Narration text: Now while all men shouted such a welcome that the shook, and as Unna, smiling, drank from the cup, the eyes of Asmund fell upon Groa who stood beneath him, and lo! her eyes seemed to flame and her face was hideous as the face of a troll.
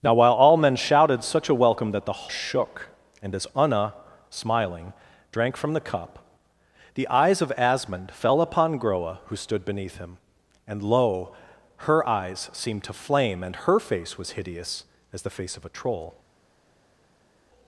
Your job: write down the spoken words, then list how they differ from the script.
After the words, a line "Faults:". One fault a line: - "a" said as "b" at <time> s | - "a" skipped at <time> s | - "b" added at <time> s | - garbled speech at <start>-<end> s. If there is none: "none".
Now while all men shouted such a welcome that the shook, and as Unna, smiling, drank from the cup, the eyes of Asmund fell upon Groa who stood beneath him, and lo! her eyes seemed to flame and her face was hideous as the face of a troll.
Faults:
none